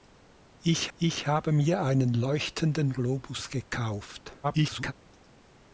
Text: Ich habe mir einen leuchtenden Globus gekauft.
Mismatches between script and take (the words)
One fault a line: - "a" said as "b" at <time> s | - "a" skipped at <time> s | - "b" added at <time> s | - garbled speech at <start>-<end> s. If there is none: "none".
- "ich" added at 0.9 s
- garbled speech at 4.4-4.9 s